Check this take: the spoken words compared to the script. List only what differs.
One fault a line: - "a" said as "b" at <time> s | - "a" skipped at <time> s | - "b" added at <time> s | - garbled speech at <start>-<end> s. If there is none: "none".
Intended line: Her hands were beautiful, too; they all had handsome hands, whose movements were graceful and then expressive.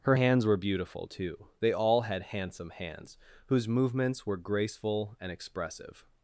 - "then" skipped at 5.3 s